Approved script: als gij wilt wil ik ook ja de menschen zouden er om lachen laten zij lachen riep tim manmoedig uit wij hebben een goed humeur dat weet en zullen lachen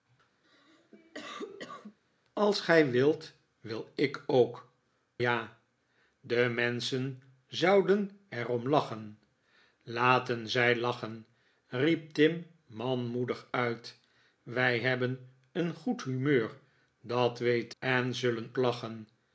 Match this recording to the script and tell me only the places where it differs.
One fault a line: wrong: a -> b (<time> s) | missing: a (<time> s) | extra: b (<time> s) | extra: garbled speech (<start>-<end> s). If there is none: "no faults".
no faults